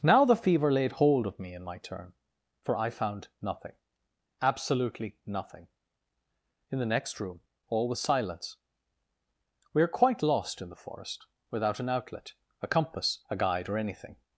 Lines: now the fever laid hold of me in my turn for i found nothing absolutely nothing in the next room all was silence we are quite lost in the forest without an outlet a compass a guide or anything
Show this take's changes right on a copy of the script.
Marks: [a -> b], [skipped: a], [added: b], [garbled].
now the fever laid hold of me in my turn for i found nothing absolutely nothing in the next room all was silence we are quite lost in the forest without an outlet a compass a guide or anything